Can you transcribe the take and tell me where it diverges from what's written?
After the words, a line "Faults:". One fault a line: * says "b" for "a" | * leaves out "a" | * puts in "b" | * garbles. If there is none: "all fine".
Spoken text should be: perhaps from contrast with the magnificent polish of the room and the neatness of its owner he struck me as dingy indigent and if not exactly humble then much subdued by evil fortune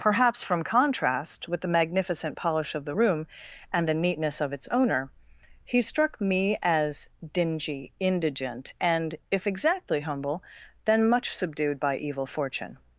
perhaps from contrast with the magnificent polish of the room and the neatness of its owner he struck me as dingy indigent and if exactly humble then much subdued by evil fortune
Faults:
* leaves out "not"